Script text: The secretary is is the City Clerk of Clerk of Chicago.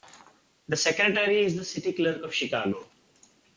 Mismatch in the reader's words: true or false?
true